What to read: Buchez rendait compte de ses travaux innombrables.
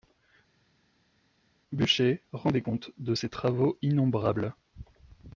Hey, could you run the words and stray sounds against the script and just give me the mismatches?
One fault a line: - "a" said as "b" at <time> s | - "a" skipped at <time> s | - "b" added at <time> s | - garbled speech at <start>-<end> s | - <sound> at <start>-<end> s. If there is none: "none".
none